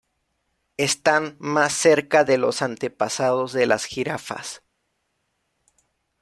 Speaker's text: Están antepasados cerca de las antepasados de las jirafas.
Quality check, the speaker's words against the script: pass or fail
fail